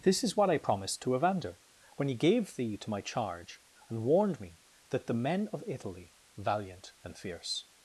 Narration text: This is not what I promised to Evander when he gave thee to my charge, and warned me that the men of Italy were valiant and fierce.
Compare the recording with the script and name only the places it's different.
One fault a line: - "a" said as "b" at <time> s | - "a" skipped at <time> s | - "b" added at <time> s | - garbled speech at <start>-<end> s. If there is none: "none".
- "not" skipped at 0.4 s
- "were" skipped at 6.1 s